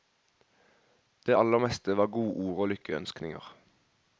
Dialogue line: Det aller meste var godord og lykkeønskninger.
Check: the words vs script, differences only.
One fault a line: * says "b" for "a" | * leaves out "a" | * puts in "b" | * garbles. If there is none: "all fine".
all fine